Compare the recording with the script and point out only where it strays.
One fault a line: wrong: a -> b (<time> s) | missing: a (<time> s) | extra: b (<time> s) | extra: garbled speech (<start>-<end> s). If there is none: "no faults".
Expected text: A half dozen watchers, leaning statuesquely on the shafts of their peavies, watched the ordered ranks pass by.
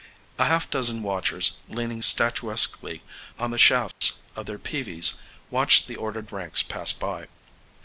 no faults